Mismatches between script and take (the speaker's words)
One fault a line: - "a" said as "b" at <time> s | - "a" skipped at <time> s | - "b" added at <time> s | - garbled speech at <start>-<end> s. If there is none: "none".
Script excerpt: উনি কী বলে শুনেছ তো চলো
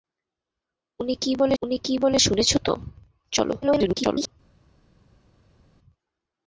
- "উনি কী বলে" added at 1.6 s
- garbled speech at 3.6-4.3 s